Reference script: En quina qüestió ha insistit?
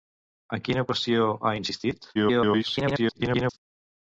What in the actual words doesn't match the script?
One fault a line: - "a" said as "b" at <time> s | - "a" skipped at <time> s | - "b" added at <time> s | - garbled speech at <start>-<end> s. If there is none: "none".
- garbled speech at 2.1-3.6 s